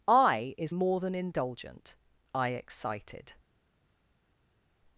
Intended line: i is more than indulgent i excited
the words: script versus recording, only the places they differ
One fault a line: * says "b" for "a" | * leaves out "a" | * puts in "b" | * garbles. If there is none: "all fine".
all fine